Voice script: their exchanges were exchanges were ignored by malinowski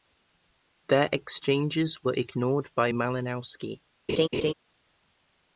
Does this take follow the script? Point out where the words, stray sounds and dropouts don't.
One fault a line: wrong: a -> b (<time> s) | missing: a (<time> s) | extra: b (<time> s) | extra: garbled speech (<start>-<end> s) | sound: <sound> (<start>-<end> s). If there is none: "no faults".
missing: exchanges were (2.1 s)
sound: laugh (4.1-4.5 s)